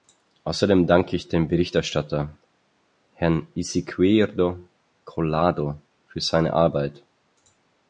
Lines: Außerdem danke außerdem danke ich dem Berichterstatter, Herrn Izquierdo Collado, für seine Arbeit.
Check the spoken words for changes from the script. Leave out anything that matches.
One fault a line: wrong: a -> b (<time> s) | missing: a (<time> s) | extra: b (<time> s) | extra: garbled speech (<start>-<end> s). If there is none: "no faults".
missing: außerdem danke (1.1 s)